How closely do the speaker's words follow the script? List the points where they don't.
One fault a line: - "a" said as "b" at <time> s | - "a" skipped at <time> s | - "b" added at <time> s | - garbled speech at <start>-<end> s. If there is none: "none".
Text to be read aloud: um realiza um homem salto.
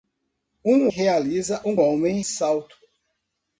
none